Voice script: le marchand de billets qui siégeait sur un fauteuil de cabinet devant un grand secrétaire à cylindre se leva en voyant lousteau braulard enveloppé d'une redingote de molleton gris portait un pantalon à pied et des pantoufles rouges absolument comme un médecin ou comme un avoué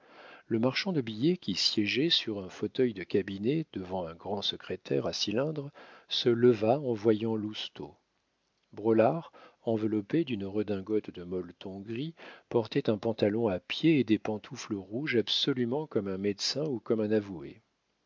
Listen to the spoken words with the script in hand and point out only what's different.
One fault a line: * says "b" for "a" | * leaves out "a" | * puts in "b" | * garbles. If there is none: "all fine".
all fine